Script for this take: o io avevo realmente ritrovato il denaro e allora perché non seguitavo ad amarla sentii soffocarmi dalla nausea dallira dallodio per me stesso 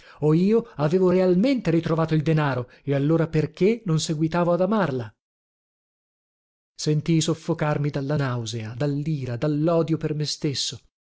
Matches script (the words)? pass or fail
pass